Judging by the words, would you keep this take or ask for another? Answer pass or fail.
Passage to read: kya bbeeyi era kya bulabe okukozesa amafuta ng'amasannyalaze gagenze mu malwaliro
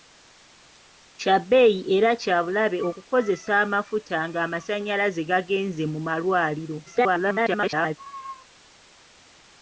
fail